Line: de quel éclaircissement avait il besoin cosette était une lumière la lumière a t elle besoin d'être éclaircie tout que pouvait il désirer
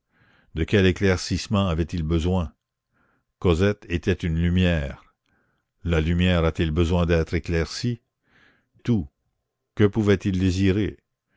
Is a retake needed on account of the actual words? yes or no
no